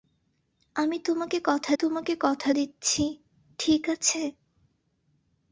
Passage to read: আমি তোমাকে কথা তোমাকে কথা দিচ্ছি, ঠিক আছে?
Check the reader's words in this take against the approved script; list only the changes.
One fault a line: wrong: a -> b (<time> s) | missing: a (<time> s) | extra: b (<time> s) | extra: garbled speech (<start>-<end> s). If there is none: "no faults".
no faults